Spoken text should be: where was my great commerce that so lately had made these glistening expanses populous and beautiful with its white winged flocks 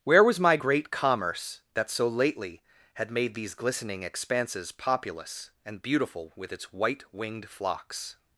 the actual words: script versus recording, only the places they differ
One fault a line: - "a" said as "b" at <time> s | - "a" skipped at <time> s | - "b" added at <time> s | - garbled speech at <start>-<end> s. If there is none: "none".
none